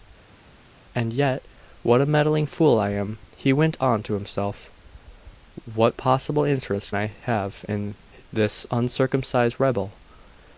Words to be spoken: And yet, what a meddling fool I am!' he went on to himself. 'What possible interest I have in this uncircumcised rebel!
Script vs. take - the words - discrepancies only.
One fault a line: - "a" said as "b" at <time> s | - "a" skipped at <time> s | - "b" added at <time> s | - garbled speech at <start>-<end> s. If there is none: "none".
none